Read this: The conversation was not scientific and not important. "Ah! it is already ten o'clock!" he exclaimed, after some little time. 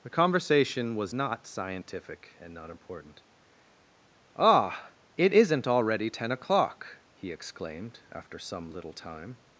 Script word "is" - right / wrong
wrong